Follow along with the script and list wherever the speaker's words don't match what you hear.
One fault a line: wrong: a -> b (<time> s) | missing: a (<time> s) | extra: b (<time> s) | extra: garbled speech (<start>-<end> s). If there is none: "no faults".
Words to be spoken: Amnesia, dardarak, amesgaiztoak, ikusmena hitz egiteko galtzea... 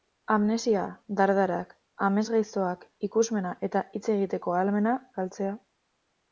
extra: eta (3.7 s)
extra: ahalmena (4.6 s)